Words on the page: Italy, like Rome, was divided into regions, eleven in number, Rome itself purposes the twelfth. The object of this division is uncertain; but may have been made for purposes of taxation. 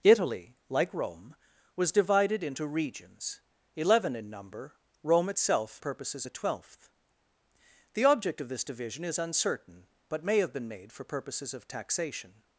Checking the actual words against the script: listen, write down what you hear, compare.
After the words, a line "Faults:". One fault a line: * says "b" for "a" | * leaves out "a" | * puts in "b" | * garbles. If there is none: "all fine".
Italy, like Rome, was divided into regions, eleven in number, Rome itself purposes the twelfth. The object of this division is uncertain; but may have been made for purposes of taxation.
Faults:
all fine